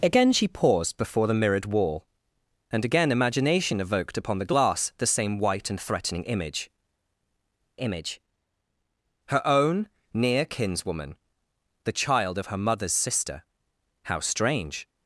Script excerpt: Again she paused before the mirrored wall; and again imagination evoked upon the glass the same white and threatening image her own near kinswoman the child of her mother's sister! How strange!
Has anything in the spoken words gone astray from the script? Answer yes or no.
yes